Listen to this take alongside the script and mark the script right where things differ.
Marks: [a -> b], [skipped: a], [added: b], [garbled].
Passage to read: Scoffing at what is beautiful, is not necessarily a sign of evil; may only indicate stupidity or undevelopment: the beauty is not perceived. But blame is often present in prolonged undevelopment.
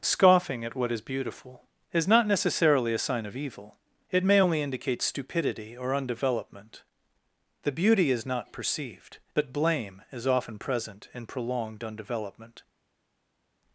Scoffing at what is beautiful, is not necessarily a sign of evil; [added: it] may only indicate stupidity or undevelopment: the beauty is not perceived. But blame is often present in prolonged undevelopment.